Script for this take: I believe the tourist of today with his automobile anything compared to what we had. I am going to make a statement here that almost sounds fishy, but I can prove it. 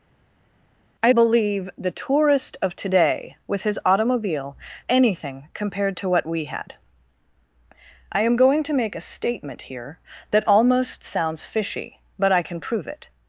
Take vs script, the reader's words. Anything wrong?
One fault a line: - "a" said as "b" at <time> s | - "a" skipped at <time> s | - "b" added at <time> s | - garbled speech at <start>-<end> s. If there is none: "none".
none